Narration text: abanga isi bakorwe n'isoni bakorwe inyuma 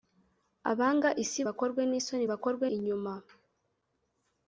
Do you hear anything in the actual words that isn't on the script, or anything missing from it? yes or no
no